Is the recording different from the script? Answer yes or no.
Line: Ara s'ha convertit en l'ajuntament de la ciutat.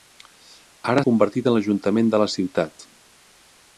yes